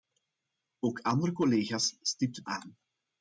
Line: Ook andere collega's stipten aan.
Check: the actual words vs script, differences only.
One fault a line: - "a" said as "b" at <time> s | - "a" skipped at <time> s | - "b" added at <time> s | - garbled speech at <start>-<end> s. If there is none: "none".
none